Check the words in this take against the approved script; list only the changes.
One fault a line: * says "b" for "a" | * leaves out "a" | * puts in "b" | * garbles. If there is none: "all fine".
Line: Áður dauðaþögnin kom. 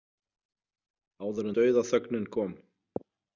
all fine